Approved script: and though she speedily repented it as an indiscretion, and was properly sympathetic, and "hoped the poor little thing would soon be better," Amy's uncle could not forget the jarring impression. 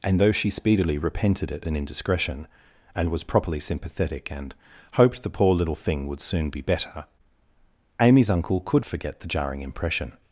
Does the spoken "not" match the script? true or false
false